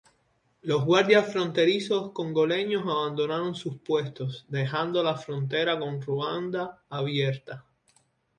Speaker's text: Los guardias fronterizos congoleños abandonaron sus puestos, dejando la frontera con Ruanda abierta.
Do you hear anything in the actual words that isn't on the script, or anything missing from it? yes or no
no